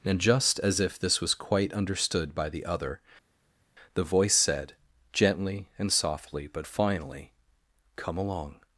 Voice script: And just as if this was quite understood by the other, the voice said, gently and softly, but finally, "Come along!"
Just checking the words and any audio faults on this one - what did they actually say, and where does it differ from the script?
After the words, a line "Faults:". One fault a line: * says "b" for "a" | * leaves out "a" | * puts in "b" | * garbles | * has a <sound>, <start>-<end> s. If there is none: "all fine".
And just as if this was quite understood by the other, the voice said, gently and softly, but finally, "Come along!"
Faults:
all fine